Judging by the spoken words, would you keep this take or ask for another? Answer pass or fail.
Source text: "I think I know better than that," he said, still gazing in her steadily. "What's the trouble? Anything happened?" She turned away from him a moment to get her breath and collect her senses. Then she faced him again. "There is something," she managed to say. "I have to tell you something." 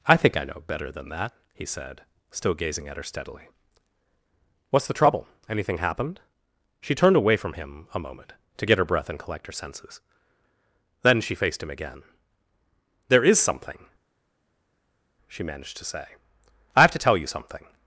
fail